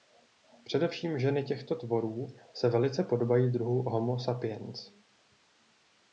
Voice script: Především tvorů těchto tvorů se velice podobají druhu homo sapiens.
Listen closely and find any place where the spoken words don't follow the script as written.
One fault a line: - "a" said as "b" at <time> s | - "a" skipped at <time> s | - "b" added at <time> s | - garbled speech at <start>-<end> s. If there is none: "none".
- "tvorů" said as "ženy" at 1.2 s